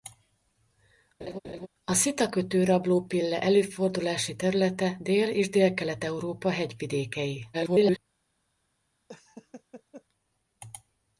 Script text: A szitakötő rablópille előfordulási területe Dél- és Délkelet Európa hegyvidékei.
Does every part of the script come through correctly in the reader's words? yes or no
no